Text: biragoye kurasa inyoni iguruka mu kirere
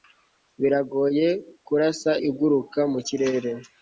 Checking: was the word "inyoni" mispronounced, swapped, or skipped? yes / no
yes